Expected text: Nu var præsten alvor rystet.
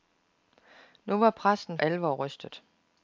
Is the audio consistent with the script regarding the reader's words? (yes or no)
yes